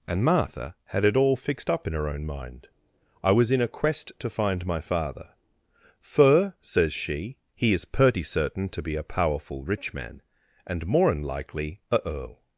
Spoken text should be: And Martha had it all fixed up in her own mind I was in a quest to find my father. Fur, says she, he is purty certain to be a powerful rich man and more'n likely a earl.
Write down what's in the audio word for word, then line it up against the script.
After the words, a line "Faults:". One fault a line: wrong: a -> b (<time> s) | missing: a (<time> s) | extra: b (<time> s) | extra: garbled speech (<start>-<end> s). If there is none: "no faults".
And Martha had it all fixed up in her own mind I was in a quest to find my father. Fur, says she, he is purty certain to be a powerful rich man and more'n likely a earl.
Faults:
no faults